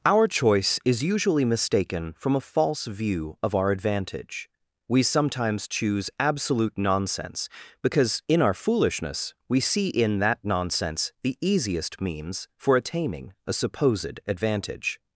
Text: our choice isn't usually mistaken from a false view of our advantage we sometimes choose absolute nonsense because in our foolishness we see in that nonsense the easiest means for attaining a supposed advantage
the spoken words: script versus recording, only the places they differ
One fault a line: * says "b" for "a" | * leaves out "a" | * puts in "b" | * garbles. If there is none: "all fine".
* says "is" for "isn't"